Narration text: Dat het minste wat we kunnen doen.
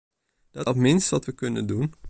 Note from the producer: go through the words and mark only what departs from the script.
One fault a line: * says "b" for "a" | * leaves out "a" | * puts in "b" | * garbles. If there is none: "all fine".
all fine